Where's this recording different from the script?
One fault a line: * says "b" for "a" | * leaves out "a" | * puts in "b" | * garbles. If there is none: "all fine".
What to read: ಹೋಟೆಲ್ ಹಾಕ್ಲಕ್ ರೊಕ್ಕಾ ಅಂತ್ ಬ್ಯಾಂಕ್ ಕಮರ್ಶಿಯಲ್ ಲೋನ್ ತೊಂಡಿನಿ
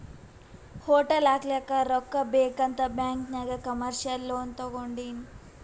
* puts in "ಬೇಕ್"
* puts in "ನಾಗ್"